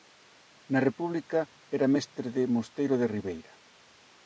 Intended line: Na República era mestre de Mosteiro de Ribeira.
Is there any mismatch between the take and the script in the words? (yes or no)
no